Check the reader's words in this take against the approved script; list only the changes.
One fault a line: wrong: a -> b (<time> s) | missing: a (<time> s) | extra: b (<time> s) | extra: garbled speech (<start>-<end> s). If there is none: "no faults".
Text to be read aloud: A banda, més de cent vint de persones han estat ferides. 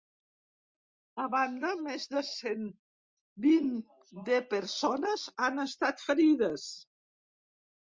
no faults